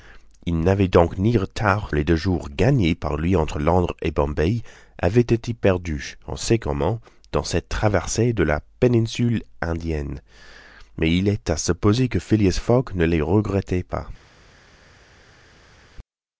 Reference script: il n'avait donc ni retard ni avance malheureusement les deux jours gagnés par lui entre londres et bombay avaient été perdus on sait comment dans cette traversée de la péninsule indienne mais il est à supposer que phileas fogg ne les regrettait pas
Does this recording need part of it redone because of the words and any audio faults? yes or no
yes